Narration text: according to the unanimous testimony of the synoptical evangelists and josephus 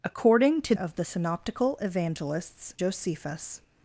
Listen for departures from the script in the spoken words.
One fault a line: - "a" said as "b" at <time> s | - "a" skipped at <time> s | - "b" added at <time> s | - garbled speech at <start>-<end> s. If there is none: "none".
- "the unanimous testimony" skipped at 0.7 s
- "and" skipped at 2.7 s